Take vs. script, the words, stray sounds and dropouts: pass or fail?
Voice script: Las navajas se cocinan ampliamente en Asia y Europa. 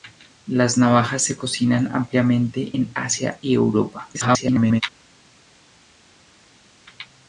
fail